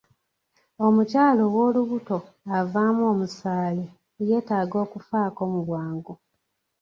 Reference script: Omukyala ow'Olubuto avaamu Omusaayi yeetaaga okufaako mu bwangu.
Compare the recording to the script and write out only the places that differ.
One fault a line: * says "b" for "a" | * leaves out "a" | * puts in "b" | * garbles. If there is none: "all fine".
all fine